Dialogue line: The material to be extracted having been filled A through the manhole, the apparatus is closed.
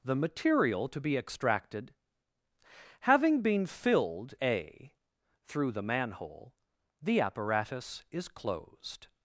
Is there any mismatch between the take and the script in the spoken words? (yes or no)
no